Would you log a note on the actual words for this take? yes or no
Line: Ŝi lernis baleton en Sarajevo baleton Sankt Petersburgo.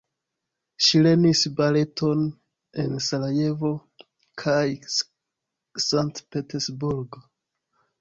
yes